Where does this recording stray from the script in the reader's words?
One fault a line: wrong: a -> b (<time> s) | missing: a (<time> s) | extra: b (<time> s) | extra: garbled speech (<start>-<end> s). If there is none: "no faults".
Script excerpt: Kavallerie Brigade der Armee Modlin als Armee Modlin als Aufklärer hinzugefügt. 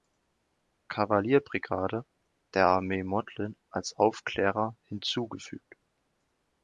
missing: Armee Modlin als (3.9 s)